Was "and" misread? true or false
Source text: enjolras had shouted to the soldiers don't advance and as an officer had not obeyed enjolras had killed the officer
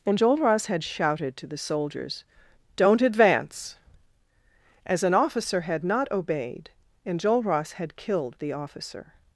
true